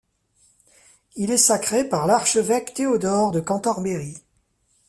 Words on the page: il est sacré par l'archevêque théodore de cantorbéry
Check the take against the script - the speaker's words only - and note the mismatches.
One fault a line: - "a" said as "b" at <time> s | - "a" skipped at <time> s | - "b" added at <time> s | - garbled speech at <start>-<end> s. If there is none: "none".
none